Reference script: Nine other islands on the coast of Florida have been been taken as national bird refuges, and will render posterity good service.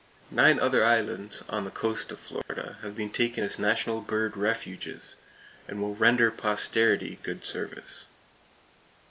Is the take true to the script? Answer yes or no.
no